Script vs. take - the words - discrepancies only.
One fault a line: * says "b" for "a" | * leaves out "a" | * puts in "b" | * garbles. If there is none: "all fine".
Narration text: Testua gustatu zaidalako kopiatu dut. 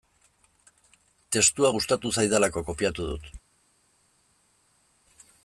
all fine